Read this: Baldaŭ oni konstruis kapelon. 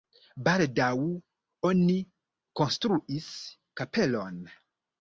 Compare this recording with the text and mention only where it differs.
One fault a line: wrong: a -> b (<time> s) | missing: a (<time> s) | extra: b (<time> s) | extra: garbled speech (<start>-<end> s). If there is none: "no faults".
no faults